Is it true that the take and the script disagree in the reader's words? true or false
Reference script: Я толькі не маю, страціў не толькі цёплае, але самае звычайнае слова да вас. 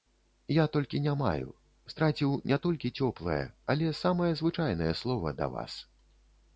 false